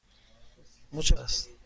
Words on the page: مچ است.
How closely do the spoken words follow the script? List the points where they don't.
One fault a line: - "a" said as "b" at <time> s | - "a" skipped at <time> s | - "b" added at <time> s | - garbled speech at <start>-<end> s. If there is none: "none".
none